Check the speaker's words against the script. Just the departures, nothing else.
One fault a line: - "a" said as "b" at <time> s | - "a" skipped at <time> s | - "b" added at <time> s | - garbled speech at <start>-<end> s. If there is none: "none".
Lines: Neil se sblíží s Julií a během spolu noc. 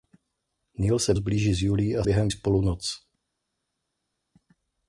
none